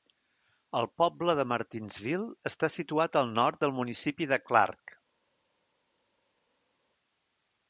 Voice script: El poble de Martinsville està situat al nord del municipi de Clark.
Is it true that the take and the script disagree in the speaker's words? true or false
false